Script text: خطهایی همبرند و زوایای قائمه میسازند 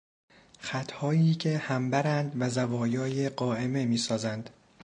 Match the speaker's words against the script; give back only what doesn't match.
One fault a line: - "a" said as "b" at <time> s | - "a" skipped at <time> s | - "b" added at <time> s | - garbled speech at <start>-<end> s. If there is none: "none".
- "که" added at 1.4 s